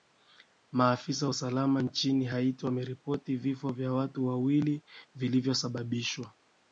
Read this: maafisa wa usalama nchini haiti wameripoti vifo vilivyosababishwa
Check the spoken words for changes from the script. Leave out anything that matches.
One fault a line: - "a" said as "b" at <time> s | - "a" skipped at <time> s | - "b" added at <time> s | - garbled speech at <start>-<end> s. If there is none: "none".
- "vya watu wawili" added at 3.7 s